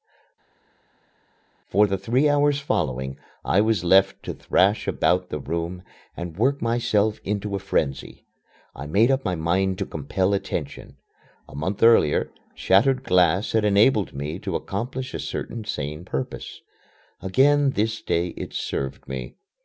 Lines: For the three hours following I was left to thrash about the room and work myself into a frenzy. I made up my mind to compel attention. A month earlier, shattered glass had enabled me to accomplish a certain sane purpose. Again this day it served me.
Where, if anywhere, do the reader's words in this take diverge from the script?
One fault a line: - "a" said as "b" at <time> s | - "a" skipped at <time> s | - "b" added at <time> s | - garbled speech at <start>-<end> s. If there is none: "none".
none